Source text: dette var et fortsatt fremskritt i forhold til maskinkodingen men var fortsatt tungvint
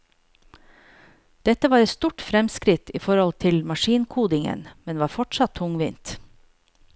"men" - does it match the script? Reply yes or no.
yes